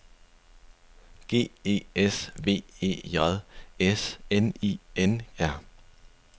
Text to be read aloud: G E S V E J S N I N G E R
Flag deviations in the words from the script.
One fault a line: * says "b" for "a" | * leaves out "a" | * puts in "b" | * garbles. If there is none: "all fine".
* leaves out "G E"